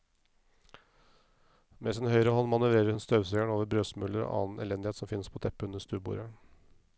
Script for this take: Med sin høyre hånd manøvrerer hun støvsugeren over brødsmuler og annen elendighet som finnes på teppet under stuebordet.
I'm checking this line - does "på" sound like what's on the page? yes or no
yes